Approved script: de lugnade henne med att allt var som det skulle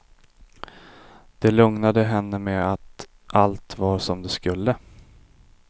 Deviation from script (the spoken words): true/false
false